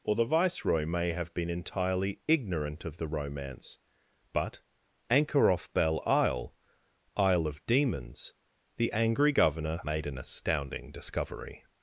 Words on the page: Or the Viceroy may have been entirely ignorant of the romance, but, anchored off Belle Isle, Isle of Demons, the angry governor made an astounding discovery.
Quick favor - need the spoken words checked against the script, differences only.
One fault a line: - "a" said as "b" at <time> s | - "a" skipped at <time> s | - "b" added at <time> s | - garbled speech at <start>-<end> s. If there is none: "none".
- "anchored" said as "anchor" at 5.1 s